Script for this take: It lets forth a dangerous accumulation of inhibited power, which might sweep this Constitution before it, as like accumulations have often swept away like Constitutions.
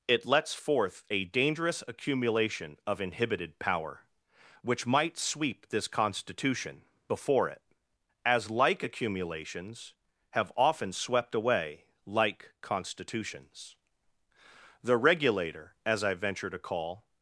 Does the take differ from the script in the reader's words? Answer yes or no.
yes